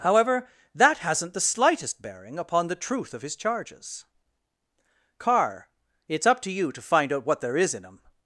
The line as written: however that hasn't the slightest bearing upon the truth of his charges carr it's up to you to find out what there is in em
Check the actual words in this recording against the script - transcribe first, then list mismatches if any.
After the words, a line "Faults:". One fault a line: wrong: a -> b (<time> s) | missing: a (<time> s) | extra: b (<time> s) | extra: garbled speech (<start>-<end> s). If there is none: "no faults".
however that hasn't the slightest bearing upon the truth of his charges carr it's up to you to find out what there is in em
Faults:
no faults